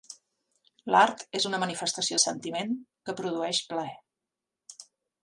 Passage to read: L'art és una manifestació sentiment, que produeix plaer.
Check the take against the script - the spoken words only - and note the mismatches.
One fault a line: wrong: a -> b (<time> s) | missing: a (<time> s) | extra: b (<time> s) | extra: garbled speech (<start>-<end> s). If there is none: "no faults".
no faults